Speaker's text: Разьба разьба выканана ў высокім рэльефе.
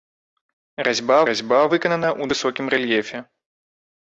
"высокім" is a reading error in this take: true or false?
false